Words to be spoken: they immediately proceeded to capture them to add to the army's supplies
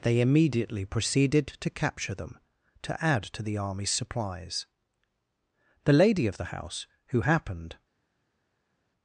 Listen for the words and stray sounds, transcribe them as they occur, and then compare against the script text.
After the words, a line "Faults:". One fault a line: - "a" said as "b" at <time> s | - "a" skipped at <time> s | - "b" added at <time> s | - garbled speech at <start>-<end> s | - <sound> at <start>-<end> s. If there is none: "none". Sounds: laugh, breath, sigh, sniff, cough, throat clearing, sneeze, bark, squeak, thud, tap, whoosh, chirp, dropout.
they immediately proceeded to capture them to add to the army's supplies the lady of the house who happened
Faults:
- "the lady of the house who happened" added at 5.8 s